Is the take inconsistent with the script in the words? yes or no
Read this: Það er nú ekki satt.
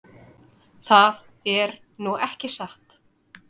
no